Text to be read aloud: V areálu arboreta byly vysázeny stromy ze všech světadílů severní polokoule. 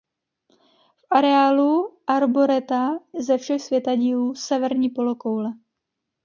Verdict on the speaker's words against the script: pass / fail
fail